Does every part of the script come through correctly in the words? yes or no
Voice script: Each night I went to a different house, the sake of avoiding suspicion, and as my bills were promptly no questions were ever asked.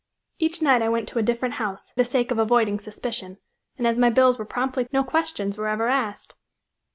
yes